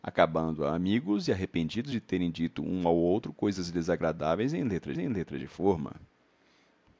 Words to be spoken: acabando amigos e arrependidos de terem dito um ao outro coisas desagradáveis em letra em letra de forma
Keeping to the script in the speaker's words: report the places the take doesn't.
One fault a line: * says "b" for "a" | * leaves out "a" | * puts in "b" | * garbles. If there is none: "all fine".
all fine